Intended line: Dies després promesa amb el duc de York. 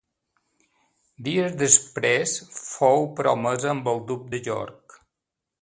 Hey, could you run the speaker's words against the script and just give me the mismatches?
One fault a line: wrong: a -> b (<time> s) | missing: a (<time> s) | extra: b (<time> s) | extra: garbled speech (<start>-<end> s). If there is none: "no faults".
extra: fou (2.6 s)